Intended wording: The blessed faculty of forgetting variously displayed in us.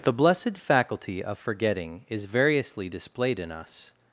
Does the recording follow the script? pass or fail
fail